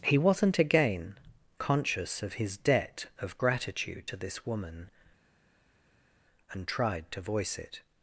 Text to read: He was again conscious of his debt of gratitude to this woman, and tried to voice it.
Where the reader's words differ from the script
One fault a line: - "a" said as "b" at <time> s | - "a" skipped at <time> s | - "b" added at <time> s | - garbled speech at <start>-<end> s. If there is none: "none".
- "was" said as "wasn't" at 0.2 s